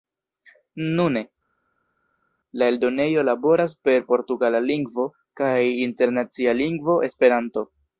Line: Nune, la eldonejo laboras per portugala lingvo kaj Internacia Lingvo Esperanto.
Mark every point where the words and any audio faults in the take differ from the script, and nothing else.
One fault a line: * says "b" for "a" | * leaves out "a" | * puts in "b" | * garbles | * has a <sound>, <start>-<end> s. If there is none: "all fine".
all fine